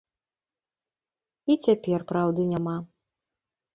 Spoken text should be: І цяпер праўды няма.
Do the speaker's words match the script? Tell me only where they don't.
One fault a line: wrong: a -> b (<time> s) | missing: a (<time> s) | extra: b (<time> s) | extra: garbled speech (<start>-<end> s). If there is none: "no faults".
no faults